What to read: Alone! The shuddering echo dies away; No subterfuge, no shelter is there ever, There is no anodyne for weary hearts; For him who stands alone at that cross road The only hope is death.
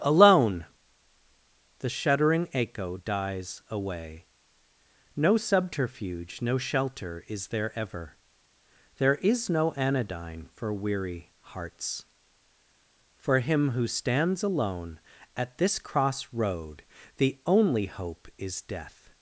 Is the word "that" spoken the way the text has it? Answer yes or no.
no